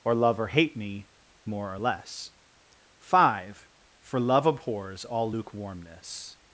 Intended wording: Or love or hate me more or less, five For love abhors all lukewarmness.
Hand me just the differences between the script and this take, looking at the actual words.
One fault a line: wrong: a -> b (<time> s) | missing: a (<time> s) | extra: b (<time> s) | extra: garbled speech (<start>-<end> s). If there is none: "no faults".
no faults